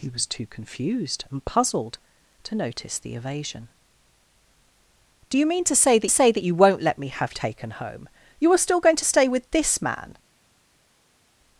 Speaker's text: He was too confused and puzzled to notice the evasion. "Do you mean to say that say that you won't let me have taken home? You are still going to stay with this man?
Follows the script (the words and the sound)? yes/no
yes